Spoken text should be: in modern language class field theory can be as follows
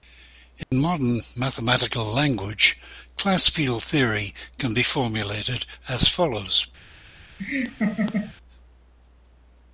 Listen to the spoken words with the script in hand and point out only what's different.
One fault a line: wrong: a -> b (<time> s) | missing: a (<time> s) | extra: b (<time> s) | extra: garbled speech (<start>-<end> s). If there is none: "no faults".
extra: mathematical (1.4 s)
extra: formulated (4.8 s)